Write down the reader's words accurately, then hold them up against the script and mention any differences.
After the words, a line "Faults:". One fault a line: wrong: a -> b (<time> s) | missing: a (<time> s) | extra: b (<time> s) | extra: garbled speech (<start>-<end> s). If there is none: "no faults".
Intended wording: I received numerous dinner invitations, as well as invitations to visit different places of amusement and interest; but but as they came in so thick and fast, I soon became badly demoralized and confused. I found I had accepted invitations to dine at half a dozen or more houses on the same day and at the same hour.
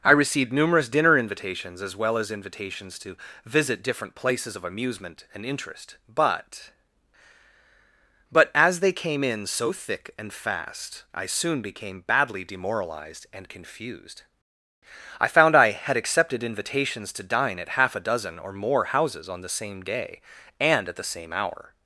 I received numerous dinner invitations, as well as invitations to visit different places of amusement and interest; but but as they came in so thick and fast, I soon became badly demoralized and confused. I found I had accepted invitations to dine at half a dozen or more houses on the same day and at the same hour.
Faults:
no faults